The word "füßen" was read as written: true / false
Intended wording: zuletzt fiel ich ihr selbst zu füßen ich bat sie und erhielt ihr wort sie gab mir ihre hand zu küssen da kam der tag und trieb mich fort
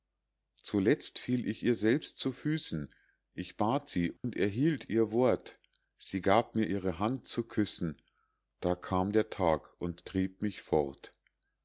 true